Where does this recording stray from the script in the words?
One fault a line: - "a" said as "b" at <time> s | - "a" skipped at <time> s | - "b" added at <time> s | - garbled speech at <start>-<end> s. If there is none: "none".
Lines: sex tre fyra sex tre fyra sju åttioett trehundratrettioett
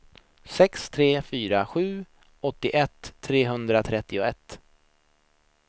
- "sex tre fyra" skipped at 1.6 s